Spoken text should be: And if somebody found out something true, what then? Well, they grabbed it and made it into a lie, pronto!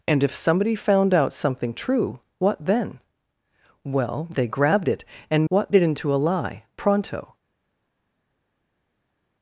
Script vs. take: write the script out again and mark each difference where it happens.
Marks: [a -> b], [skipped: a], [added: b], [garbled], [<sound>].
And if somebody found out something true, what then? Well, they grabbed it and [made -> what] it into a lie, pronto!